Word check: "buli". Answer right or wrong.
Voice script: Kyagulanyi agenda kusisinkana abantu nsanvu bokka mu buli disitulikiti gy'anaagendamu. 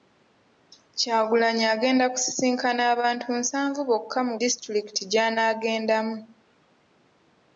wrong